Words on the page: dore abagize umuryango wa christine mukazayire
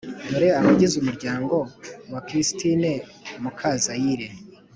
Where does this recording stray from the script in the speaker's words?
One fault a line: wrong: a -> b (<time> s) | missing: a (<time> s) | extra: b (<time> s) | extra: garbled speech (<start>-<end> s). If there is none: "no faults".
no faults